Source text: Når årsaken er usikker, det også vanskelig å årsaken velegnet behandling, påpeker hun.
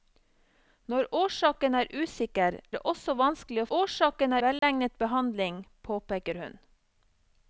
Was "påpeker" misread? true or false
false